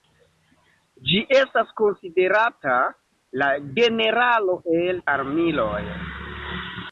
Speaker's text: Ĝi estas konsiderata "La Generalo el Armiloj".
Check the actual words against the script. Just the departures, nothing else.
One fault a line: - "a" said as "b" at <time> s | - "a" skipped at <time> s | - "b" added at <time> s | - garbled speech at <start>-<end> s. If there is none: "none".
none